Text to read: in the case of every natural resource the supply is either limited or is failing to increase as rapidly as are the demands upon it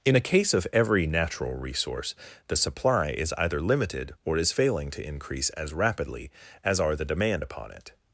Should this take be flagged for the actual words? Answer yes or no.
yes